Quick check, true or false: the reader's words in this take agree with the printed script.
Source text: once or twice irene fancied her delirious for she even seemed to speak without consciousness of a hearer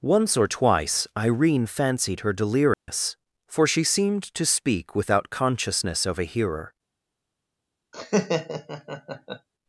false